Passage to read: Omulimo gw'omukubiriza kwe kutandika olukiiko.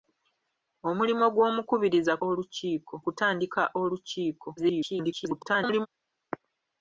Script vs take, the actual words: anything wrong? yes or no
yes